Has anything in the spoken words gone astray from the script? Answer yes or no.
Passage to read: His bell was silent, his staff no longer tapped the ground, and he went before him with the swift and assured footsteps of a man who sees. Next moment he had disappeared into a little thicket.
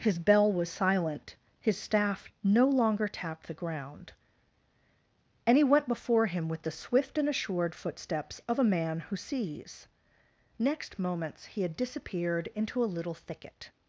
yes